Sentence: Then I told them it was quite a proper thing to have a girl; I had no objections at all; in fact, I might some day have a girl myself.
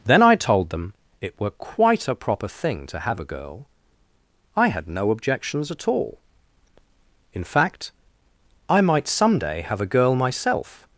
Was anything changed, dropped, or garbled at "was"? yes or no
yes